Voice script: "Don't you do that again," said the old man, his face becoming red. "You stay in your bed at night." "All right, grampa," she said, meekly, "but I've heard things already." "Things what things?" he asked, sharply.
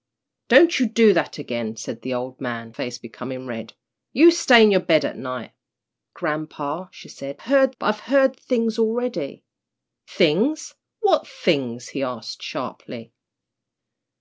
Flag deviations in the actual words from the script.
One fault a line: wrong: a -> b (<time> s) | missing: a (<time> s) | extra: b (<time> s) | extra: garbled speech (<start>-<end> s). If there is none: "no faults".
missing: his (2.7 s)
missing: All right (5.5 s)
wrong: meekly -> heard (7.4 s)